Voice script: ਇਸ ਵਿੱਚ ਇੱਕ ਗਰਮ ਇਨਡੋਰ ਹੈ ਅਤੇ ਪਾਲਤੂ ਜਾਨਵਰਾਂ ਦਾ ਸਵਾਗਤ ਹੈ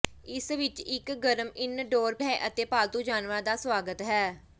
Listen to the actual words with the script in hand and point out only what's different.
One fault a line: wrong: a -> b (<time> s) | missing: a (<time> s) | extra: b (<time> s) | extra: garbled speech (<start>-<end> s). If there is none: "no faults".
no faults